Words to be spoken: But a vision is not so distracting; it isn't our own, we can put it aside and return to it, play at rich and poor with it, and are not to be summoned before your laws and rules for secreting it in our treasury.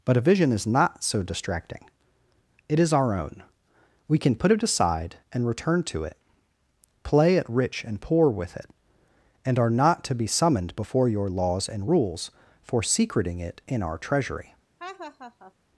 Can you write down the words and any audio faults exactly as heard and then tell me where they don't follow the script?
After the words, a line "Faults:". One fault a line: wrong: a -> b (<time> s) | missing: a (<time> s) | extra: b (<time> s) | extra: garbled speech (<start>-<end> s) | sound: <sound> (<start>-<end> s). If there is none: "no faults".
But a vision is not so distracting; it is our own, we can put it aside and return to it, play at rich and poor with it, and are not to be summoned before your laws and rules for secreting it in our treasury.
Faults:
wrong: isn't -> is (2.8 s)
sound: laugh (14.8-15.5 s)